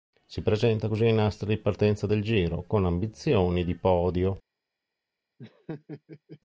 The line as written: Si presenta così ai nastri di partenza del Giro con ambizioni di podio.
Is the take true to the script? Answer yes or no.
yes